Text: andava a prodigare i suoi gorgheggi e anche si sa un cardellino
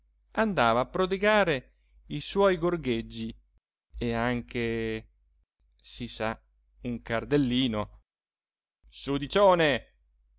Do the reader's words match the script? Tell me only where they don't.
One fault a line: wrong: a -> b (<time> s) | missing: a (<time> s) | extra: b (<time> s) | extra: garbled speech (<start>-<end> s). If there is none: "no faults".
no faults